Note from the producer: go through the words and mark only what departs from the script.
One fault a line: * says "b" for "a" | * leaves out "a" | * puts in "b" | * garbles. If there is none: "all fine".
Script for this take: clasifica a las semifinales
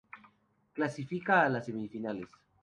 all fine